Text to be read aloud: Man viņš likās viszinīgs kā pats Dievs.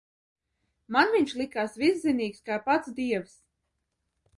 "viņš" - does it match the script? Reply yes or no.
yes